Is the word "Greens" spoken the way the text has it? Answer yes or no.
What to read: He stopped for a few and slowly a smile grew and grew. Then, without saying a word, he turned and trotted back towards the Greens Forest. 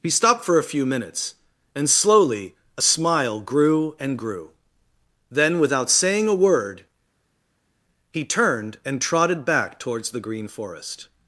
no